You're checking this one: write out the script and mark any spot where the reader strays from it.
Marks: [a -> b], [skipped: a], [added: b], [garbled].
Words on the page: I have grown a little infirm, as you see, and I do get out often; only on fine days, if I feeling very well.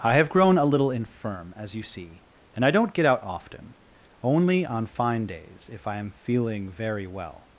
I have grown a little infirm, as you see, and I [do -> don't] get out often; only on fine days, if I [added: am] feeling very well.